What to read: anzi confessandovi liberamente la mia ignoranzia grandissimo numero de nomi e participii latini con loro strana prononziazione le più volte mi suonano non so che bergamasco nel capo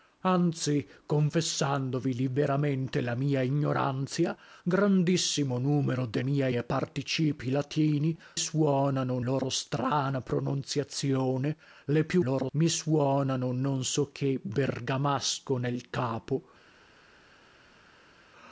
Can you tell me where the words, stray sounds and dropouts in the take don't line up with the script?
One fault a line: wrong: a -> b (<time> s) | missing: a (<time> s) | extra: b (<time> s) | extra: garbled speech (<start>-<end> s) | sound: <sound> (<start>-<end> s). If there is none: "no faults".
wrong: nomi -> mia (6.2 s)
wrong: con -> suonano (8.3 s)
wrong: volte -> loro (12.2 s)